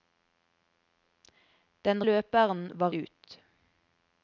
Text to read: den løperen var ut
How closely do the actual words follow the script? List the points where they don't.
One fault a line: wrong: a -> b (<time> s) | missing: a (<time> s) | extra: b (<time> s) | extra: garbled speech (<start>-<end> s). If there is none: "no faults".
no faults